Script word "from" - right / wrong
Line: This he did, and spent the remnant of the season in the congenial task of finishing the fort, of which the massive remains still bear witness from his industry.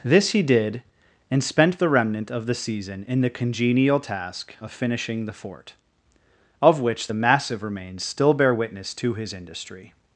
wrong